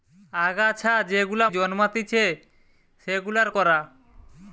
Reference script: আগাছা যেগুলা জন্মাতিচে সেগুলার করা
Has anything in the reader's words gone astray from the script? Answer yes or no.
no